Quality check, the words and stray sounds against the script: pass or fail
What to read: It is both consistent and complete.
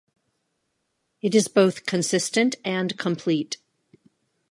pass